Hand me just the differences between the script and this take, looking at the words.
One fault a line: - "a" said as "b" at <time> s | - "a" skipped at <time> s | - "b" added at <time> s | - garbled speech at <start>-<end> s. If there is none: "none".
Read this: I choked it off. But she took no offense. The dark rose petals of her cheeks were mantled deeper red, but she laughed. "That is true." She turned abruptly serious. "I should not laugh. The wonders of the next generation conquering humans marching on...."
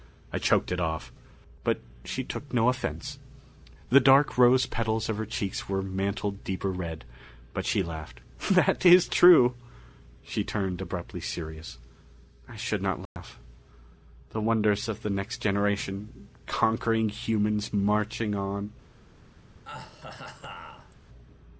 none